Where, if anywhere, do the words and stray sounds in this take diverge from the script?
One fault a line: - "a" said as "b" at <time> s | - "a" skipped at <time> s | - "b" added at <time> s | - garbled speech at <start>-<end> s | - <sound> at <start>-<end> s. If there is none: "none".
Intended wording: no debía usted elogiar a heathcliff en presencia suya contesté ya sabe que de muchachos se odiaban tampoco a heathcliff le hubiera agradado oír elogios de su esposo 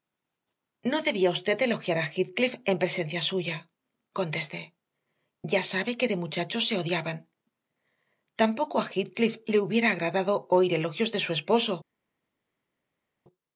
none